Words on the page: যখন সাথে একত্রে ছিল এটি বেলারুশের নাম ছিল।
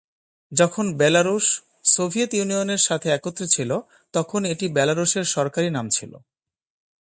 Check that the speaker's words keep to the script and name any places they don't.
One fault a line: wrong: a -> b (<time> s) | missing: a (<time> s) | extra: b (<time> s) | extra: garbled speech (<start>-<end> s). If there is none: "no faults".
extra: বেলারুশ সোভিয়েত ইউনিয়নের (1.0 s)
extra: তখন (4.1 s)
extra: সরকারি (5.3 s)